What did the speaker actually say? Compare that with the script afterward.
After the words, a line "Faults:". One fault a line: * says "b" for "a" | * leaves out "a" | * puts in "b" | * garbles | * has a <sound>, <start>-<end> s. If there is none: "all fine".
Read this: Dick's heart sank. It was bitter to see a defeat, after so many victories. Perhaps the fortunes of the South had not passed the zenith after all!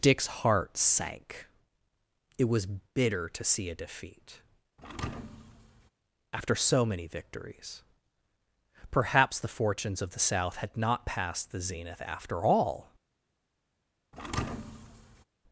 Dick's heart sank. It was bitter to see a defeat, after so many victories. Perhaps the fortunes of the South had not passed the zenith after all!
Faults:
* has a thud, 4.8-5.9 s
* has a thud, 14.1-15.2 s